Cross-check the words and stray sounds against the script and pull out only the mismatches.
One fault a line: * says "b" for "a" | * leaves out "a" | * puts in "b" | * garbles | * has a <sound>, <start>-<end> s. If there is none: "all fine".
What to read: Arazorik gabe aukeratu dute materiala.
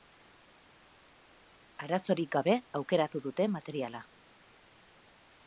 all fine